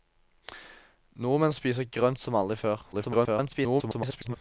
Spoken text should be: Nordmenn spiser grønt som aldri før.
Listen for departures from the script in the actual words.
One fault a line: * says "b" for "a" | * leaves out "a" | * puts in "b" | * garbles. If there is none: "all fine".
* garbles